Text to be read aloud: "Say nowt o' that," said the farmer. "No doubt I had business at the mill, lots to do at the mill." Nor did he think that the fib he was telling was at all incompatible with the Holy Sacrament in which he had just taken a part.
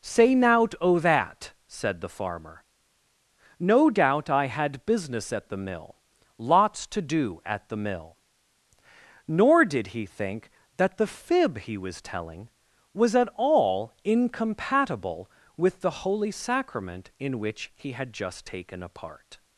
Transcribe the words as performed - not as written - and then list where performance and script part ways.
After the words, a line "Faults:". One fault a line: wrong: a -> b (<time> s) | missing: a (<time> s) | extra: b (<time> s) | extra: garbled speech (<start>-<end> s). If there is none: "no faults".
"Say nowt o' that," said the farmer. "No doubt I had business at the mill, lots to do at the mill." Nor did he think that the fib he was telling was at all incompatible with the Holy Sacrament in which he had just taken a part.
Faults:
no faults